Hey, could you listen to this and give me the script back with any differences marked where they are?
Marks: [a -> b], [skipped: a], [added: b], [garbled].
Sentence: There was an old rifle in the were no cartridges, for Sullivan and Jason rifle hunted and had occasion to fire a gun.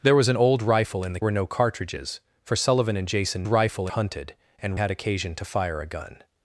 There was an old rifle in the were no cartridges, for Sullivan and Jason rifle hunted and had occasion to fire a gun.